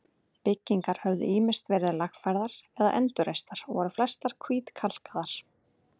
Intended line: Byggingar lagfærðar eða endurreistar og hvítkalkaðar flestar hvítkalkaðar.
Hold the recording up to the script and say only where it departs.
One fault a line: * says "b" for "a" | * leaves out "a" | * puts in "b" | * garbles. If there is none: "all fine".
* puts in "höfðu ýmist verið"
* says "voru" for "hvítkalkaðar"